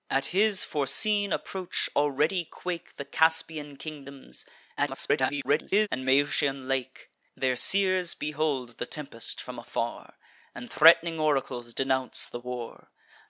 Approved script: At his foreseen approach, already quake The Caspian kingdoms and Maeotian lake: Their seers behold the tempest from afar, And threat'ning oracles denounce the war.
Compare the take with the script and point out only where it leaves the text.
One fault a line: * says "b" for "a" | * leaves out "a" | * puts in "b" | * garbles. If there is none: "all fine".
* garbles